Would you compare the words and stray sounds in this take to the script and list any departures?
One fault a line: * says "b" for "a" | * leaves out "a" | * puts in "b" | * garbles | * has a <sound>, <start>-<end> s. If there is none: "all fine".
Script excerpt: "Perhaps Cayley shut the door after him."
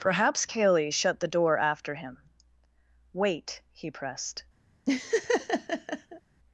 * puts in "Wait He pressed"
* has a laugh, 4.9-6.2 s